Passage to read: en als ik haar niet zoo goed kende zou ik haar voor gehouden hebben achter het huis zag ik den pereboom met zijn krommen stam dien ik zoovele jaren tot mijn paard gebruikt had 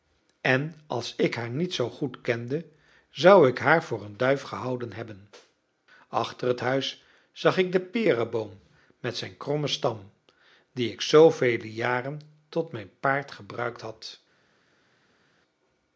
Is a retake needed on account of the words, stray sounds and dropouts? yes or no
yes